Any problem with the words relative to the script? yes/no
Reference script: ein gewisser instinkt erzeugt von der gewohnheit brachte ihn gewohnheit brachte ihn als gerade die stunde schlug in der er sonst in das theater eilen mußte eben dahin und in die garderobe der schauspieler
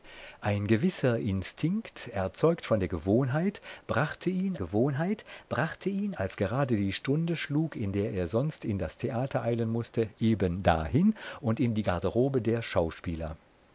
no